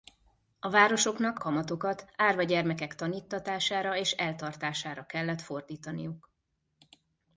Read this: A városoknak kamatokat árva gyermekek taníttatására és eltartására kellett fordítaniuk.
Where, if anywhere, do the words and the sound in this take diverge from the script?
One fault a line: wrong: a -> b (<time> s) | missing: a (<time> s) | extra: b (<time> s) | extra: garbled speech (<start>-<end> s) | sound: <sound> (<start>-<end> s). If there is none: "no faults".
no faults